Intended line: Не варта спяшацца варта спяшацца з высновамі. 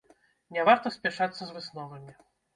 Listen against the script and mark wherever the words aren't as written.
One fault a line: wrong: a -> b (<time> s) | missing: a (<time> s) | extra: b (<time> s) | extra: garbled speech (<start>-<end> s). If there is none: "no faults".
missing: варта спяшацца (1.4 s)